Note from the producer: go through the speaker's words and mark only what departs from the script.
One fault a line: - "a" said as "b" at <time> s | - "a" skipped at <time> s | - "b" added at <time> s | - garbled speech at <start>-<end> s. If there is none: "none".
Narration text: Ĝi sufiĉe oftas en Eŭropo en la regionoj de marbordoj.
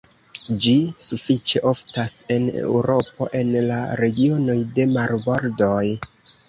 none